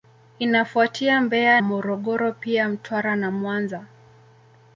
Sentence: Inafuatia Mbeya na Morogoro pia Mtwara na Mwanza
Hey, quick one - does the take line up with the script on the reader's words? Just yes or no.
no